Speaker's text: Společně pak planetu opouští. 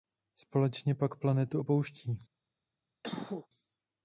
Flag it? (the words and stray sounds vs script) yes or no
yes